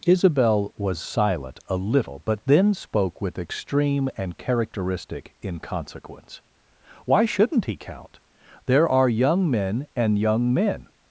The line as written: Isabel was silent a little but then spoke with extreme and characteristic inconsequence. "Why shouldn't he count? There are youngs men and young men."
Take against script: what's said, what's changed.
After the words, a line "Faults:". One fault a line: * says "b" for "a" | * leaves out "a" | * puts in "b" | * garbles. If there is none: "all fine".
Isabel was silent a little but then spoke with extreme and characteristic inconsequence. "Why shouldn't he count? There are young men and young men."
Faults:
* says "young" for "youngs"